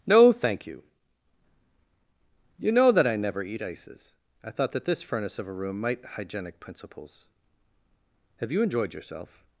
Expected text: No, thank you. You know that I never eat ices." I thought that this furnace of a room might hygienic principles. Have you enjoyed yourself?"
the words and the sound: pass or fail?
pass